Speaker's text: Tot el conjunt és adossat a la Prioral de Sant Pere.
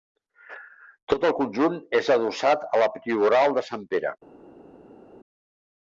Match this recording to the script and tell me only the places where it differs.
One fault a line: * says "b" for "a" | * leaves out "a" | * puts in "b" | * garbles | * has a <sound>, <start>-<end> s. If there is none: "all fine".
all fine